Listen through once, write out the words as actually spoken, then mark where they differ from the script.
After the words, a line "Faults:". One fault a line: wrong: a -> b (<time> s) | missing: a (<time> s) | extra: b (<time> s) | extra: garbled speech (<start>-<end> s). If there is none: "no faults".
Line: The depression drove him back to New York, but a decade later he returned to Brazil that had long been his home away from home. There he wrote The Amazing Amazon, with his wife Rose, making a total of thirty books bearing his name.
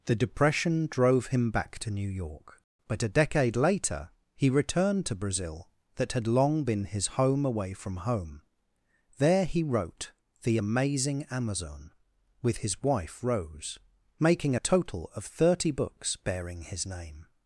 The depression drove him back to New York, but a decade later he returned to Brazil that had long been his home away from home. There he wrote The Amazing Amazon, with his wife Rose, making a total of thirty books bearing his name.
Faults:
no faults